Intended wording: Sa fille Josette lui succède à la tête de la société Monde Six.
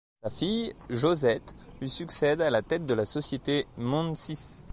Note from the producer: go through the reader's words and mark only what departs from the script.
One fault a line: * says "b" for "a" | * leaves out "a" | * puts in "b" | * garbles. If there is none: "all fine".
all fine